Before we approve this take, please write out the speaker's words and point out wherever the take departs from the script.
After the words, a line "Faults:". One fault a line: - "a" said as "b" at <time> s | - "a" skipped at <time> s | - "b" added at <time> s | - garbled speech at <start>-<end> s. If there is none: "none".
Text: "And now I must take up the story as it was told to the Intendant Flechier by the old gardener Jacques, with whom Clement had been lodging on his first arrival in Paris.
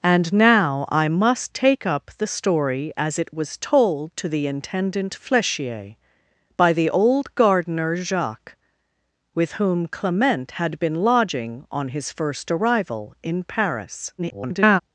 "And now I must take up the story as it was told to the Intendant Flechier by the old gardener Jacques, with whom Clement had been lodging on his first arrival in Paris. [garbled]
Faults:
- garbled speech at 14.2-14.8 s